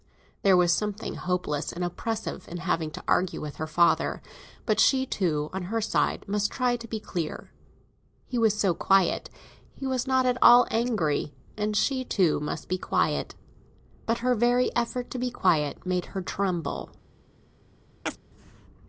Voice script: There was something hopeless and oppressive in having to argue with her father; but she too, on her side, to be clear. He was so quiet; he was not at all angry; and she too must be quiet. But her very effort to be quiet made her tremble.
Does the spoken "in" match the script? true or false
true